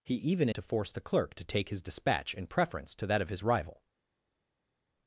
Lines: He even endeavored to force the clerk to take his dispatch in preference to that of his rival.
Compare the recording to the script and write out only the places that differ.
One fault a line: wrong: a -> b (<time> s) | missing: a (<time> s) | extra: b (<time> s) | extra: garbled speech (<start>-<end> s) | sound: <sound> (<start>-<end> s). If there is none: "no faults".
missing: endeavored (0.5 s)